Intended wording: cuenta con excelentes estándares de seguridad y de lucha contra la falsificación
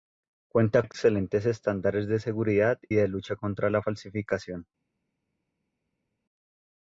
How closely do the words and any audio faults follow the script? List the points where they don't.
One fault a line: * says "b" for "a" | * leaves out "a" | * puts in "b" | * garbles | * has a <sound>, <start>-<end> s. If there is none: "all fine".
* leaves out "con"
* leaves out "y"